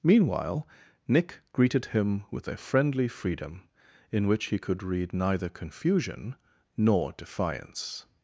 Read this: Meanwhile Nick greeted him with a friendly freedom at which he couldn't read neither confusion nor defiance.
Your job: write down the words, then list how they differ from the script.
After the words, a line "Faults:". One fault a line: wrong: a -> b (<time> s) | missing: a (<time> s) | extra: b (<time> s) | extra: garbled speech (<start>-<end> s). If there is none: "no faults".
Meanwhile Nick greeted him with a friendly freedom in which he could read neither confusion nor defiance.
Faults:
wrong: at -> in (4.1 s)
wrong: couldn't -> could (4.6 s)